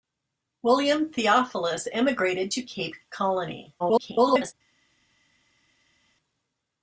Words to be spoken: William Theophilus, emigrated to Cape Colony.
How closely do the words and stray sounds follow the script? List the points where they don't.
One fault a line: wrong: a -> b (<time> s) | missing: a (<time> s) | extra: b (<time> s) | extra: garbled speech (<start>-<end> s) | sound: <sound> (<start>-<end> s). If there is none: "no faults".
extra: garbled speech (3.8-4.5 s)